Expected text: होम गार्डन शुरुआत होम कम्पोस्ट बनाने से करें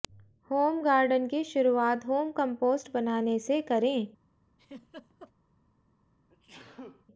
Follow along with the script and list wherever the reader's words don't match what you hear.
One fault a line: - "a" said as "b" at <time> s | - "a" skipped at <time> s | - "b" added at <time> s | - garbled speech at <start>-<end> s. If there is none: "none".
- "की" added at 1.3 s